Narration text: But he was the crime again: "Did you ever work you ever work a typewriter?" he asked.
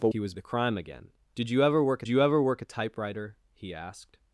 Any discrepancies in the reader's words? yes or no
no